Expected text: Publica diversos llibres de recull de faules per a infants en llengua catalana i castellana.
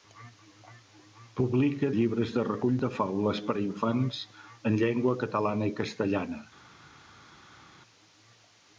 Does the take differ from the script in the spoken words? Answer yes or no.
yes